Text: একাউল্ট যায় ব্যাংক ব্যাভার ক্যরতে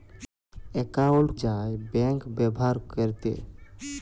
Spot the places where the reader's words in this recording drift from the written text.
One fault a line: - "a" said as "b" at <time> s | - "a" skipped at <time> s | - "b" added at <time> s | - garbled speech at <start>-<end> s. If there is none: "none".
none